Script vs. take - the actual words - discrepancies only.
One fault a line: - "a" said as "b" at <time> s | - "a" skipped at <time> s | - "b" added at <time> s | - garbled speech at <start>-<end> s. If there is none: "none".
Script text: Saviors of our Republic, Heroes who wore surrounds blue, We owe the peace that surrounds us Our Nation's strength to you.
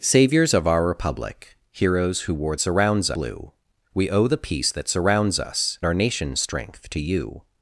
none